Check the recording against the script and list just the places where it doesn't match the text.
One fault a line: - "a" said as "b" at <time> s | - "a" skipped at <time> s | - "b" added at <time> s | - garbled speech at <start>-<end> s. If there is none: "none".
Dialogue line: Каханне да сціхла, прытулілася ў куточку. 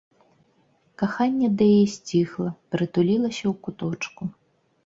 - "яе" added at 1.8 s